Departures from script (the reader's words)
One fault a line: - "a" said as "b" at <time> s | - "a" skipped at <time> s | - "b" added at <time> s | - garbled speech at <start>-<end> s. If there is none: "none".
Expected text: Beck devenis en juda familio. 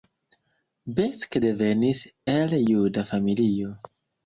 - "en" said as "el" at 2.3 s